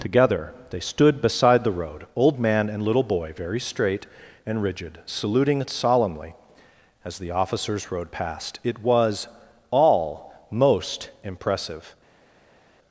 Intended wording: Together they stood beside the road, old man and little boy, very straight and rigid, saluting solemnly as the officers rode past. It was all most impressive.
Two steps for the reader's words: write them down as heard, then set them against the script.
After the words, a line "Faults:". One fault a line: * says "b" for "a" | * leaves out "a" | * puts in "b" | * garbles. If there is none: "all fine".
Together they stood beside the road, old man and little boy, very straight and rigid, saluting solemnly as the officers rode past. It was all most impressive.
Faults:
all fine